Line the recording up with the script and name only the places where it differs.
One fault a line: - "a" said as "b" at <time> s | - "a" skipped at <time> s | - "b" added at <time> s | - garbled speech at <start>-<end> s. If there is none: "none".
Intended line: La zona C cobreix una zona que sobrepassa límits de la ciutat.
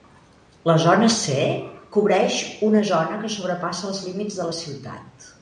- "els" added at 3.9 s